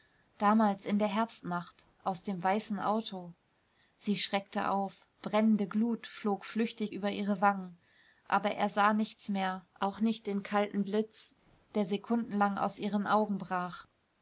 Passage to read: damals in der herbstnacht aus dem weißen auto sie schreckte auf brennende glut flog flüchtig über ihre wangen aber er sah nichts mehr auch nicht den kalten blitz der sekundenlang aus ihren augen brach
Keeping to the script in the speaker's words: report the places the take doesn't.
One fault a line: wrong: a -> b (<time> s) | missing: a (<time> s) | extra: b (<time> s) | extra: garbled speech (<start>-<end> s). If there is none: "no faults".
no faults